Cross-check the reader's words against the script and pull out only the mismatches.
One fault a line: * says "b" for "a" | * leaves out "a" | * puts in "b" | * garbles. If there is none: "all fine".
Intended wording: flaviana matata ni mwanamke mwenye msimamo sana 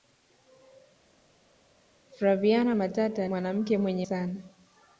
* leaves out "ni"
* leaves out "msimamo"